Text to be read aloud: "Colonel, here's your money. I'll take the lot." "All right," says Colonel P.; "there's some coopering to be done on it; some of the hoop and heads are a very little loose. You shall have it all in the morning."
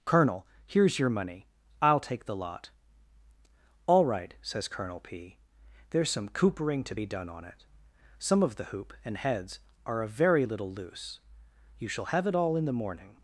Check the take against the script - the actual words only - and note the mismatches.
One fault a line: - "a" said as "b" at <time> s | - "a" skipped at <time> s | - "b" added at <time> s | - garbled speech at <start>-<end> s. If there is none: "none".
none